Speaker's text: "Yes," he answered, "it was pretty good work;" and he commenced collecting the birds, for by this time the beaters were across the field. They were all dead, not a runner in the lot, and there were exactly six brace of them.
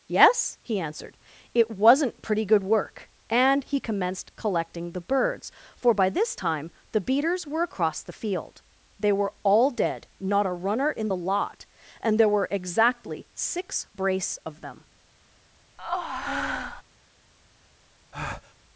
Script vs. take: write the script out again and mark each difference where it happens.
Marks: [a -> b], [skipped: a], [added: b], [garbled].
"Yes," he answered, "it [was -> wasn't] pretty good work;" and he commenced collecting the birds, for by this time the beaters were across the field. They were all dead, not a runner in the lot, and there were exactly six brace of them.